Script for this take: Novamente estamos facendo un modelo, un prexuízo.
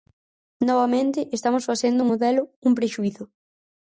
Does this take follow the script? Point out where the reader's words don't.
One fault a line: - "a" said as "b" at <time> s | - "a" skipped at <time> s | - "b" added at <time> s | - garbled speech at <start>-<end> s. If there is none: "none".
none